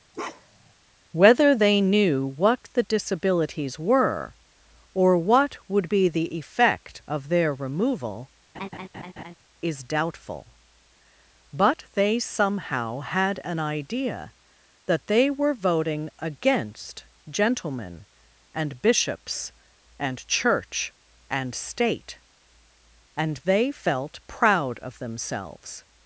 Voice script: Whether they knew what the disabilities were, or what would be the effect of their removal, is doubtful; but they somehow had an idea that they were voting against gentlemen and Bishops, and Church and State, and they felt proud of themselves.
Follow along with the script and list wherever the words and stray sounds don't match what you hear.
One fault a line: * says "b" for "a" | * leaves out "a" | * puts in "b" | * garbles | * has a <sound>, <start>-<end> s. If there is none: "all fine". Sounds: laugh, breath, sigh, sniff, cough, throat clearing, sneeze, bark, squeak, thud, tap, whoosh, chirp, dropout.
* has a bark, 0.1-0.7 s
* has a laugh, 8.5-9.3 s